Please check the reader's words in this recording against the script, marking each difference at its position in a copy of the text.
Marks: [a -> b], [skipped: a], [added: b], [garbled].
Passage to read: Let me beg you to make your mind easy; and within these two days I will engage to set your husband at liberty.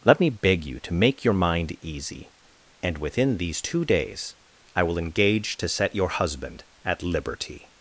Let me beg you to make your mind easy; and within these two days I will engage to set your husband at liberty.